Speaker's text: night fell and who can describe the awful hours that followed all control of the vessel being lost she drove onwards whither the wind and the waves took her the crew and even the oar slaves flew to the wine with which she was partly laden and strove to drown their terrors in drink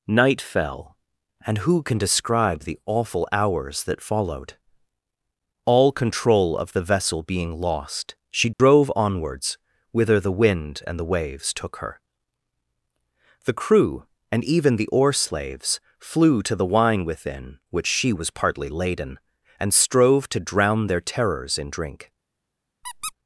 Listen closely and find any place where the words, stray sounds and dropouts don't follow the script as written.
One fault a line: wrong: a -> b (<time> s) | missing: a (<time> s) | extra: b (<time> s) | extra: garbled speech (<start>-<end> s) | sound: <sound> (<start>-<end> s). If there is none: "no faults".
sound: dropout (8.5-8.6 s)
wrong: with -> within (17.0 s)
sound: squeak (22.8-23.1 s)